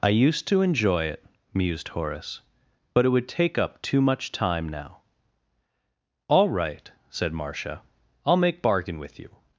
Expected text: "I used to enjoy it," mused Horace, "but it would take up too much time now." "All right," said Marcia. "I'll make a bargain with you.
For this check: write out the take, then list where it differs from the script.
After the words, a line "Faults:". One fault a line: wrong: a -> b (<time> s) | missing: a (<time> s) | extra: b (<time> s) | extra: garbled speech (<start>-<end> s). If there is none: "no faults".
"I used to enjoy it," mused Horace, "but it would take up too much time now." "All right," said Marcia. "I'll make bargain with you.
Faults:
missing: a (8.6 s)